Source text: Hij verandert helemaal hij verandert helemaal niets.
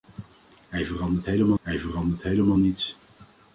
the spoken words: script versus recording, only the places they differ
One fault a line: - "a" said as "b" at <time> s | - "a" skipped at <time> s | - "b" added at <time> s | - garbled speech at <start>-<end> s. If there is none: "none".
none